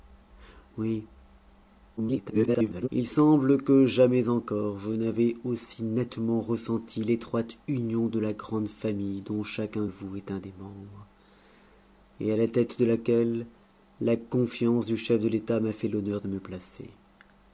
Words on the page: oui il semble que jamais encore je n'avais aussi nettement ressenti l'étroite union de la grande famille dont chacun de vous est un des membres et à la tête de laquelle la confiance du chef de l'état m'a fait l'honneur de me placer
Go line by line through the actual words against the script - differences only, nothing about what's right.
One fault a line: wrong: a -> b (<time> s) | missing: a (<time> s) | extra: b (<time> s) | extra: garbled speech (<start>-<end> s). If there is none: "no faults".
extra: garbled speech (2.0-2.9 s)
missing: de (9.9 s)